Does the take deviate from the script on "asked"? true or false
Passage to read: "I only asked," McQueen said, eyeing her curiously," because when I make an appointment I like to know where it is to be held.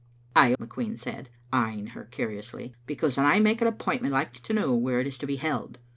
true